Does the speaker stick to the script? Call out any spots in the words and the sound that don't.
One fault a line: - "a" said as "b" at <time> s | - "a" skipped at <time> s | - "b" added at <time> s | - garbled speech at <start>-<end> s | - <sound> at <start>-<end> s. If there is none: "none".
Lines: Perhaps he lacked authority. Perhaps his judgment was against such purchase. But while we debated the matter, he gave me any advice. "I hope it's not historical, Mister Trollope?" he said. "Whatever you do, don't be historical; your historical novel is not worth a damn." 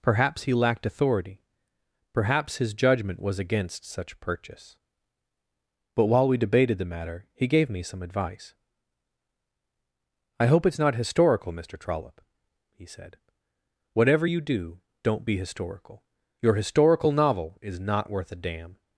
- "any" said as "some" at 7.8 s